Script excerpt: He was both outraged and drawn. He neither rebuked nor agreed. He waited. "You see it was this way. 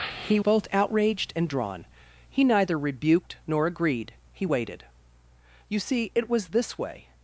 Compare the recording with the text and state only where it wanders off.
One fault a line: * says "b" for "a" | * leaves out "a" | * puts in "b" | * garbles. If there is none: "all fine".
* leaves out "was"